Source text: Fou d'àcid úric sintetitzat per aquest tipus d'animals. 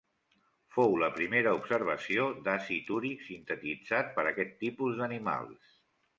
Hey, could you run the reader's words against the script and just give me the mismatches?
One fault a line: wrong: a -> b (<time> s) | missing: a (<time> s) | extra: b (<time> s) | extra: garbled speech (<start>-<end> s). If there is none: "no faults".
extra: la primera observació (1.0 s)